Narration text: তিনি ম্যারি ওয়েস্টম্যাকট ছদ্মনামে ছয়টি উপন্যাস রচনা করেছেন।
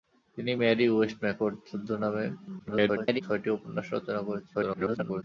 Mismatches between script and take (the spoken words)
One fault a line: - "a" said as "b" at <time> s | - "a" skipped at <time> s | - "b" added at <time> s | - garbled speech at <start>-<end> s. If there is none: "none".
- garbled speech at 2.6-3.2 s
- garbled speech at 4.5-5.2 s